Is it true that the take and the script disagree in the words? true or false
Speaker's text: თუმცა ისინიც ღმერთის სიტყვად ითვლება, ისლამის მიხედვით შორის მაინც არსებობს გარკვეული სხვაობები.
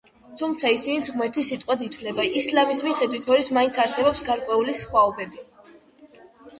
false